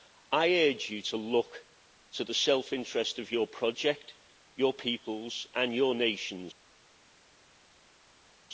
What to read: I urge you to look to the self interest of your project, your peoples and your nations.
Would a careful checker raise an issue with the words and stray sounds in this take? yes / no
no